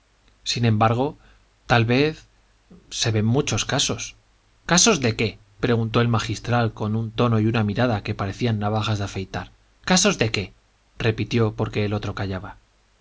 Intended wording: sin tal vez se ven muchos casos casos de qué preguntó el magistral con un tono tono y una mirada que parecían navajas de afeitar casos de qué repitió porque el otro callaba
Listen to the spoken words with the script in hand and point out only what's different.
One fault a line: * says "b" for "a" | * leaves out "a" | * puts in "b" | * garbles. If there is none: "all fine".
* puts in "embargo"
* leaves out "tono"